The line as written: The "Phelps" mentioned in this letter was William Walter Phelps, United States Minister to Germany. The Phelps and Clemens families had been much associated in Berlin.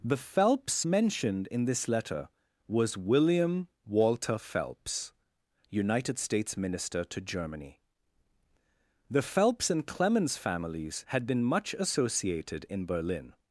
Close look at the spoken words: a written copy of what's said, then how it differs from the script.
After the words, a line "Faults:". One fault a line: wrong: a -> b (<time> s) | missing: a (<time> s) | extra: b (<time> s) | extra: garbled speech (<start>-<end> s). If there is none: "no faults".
The "Phelps" mentioned in this letter was William Walter Phelps, United States Minister to Germany. The Phelps and Clemens families had been much associated in Berlin.
Faults:
no faults